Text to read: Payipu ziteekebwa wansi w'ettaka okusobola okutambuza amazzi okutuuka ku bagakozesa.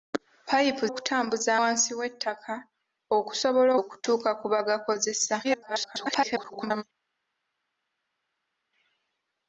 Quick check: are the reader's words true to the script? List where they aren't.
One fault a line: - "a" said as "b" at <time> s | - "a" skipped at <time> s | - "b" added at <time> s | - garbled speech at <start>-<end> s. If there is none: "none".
- "ziteekebwa" said as "okutambuza" at 0.9 s
- "okutambuza amazzi" skipped at 3.7 s
- garbled speech at 5.4-6.8 s